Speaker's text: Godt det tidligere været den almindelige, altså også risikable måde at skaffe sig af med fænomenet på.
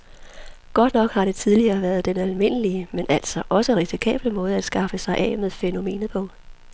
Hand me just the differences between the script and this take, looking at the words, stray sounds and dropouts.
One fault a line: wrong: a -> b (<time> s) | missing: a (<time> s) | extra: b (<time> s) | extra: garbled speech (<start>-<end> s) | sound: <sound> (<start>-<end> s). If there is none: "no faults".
extra: nok har (0.9 s)
extra: men (2.9 s)